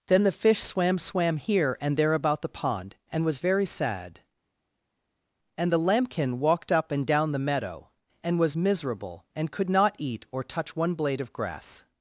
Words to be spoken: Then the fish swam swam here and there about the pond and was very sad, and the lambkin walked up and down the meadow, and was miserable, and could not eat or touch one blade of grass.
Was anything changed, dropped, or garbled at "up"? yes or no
no